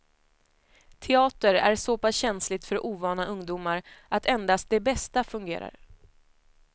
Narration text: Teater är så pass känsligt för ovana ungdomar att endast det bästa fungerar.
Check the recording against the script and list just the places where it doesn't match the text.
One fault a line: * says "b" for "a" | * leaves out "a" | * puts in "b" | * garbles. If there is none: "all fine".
all fine